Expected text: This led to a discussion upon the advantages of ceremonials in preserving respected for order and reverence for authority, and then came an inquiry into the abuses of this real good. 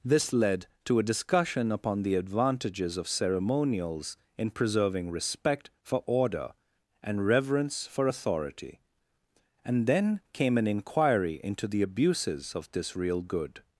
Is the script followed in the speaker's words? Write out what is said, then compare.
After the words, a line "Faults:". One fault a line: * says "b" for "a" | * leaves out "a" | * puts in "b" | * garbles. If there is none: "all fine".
This led to a discussion upon the advantages of ceremonials in preserving respect for order and reverence for authority, and then came an inquiry into the abuses of this real good.
Faults:
* says "respect" for "respected"